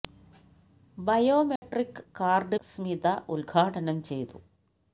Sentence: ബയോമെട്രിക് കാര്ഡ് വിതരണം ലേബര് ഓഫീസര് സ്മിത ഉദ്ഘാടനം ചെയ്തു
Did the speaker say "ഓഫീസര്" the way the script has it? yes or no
no